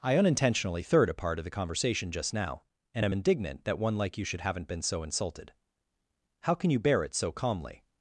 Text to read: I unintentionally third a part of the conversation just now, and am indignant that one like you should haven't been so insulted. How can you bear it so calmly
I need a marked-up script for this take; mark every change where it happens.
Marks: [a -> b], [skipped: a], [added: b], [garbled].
I unintentionally third a part of the conversation just now, and am indignant that one like you should haven't been so insulted. How can you bear it so calmly